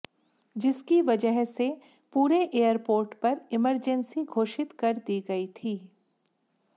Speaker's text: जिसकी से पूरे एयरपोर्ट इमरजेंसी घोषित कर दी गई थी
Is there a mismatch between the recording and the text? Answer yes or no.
yes